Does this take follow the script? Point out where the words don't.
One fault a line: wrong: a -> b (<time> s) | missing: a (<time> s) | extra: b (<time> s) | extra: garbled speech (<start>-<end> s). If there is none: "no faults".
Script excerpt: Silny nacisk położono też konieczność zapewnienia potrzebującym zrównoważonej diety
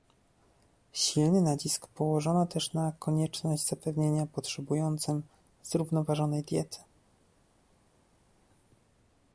extra: na (2.7 s)